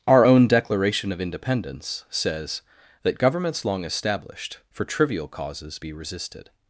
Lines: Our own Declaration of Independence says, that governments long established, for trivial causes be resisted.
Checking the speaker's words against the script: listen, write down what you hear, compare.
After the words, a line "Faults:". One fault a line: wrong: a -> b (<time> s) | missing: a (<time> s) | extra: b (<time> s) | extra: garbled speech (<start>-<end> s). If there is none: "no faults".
Our own Declaration of Independence says, that governments long established, for trivial causes be resisted.
Faults:
no faults